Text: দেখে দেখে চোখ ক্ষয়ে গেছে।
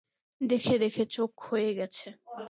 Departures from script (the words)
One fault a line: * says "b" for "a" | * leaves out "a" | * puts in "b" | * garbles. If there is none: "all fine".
all fine